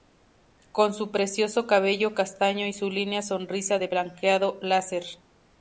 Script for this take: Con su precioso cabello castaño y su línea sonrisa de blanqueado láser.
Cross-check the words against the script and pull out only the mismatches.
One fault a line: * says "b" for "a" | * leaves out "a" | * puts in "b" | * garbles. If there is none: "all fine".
all fine